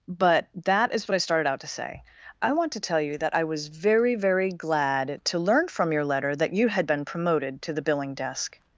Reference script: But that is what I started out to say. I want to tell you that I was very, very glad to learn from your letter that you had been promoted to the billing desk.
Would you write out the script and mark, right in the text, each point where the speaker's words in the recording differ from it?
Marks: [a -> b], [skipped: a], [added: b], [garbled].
But that is what I started out to say. I want to tell you that I was very, very glad to learn from your letter that you had been promoted to the billing desk.